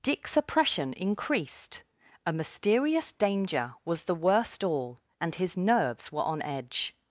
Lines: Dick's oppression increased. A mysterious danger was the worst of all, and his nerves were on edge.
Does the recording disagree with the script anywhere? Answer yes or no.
yes